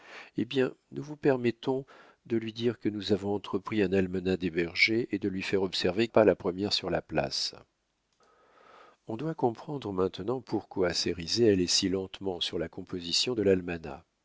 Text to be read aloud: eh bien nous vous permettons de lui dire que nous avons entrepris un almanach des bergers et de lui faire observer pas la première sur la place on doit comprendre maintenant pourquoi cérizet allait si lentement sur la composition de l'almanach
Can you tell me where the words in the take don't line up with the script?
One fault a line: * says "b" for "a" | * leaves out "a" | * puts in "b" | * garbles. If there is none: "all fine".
all fine